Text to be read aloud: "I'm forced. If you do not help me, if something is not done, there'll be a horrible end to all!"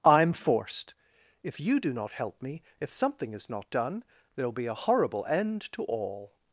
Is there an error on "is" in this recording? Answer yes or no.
no